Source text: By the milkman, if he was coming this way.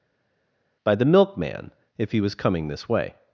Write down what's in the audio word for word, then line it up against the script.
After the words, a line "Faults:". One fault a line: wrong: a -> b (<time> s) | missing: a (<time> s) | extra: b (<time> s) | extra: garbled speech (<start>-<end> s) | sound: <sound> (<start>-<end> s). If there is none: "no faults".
By the milkman, if he was coming this way.
Faults:
no faults